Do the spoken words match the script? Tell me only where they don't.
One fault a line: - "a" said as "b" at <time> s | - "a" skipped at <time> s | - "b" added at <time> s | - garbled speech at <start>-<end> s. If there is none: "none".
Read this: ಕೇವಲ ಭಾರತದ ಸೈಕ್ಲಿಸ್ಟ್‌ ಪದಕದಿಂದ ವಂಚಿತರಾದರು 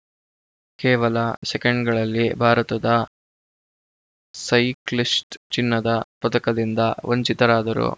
- "ಸೆಕೆಂಡ್‌ಗಳಲ್ಲಿ" added at 1.4 s
- "ಚಿನ್ನದ" added at 5.5 s